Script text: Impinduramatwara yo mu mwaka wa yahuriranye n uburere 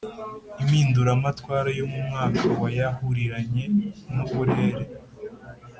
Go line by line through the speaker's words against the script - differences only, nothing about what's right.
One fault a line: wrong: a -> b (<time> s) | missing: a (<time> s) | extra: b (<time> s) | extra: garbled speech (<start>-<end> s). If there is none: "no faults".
no faults